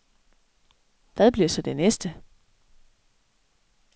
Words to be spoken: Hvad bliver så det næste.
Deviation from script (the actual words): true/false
false